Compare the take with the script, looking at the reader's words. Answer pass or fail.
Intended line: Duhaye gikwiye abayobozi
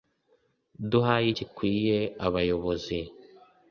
pass